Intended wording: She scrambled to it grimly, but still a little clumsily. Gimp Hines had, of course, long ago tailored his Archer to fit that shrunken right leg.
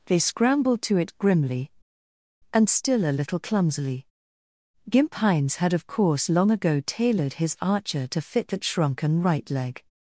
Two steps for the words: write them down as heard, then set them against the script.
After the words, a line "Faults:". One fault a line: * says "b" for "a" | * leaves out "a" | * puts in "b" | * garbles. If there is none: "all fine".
They scrambled to it grimly, and still a little clumsily. Gimp Hines had, of course, long ago tailored his Archer to fit that shrunken right leg.
Faults:
* says "They" for "She"
* says "and" for "but"